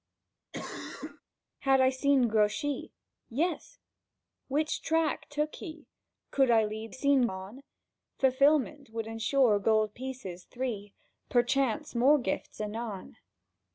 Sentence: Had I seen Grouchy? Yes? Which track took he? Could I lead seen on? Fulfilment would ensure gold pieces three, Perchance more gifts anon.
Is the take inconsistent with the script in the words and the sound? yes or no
yes